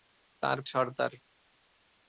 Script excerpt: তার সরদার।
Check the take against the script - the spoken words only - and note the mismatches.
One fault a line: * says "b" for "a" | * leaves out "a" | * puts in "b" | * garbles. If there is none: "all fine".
all fine